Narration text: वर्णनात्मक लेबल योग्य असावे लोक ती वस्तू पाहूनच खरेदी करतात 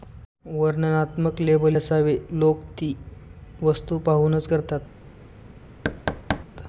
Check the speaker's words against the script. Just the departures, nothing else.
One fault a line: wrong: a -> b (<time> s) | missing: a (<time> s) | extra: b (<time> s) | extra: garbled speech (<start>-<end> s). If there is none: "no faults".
missing: योग्य (1.8 s)
missing: खरेदी (4.5 s)